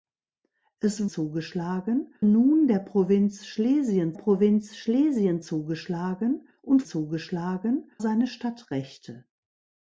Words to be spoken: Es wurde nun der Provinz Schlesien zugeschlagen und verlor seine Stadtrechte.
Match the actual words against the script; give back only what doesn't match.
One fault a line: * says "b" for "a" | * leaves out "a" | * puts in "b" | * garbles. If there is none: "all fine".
* says "zugeschlagen" for "wurde"
* puts in "Provinz Schlesien"
* says "zugeschlagen" for "verlor"